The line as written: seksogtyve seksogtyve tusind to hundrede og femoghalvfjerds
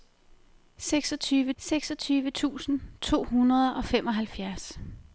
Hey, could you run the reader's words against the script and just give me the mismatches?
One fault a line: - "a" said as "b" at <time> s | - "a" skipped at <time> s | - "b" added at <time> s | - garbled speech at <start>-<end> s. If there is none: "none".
none